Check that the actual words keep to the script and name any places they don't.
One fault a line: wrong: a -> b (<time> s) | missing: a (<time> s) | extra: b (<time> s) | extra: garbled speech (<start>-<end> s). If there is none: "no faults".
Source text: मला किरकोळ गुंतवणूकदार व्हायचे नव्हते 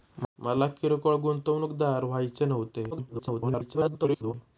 extra: garbled speech (2.9-4.3 s)